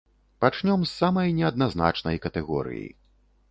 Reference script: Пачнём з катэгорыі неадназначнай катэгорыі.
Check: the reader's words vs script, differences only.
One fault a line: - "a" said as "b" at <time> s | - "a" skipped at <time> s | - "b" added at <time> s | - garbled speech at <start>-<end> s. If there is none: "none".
- "катэгорыі" said as "самай" at 1.0 s